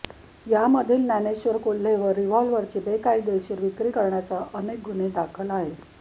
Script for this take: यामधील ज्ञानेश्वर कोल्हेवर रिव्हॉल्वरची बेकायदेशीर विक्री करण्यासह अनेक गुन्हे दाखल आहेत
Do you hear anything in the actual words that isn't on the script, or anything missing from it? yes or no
no